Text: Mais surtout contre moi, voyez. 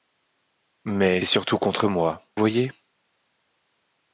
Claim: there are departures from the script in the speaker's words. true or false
false